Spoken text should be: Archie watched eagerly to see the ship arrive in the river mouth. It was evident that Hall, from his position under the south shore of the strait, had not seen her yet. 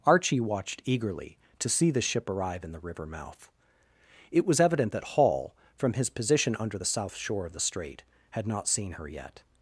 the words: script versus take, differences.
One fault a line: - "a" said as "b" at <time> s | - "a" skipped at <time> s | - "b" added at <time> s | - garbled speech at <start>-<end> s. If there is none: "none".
none